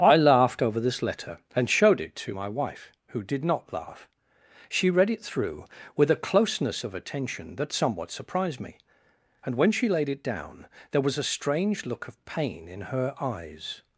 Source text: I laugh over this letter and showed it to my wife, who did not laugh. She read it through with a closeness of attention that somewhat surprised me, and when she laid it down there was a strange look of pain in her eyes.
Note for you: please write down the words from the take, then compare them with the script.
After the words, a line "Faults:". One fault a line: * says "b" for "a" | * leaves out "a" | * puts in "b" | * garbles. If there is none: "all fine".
I laughed over this letter and showed it to my wife, who did not laugh. She read it through with a closeness of attention that somewhat surprised me, and when she laid it down there was a strange look of pain in her eyes.
Faults:
* says "laughed" for "laugh"